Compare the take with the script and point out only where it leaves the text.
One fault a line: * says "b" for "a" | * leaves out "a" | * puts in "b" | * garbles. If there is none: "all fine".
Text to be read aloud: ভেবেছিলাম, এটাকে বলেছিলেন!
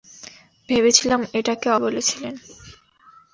all fine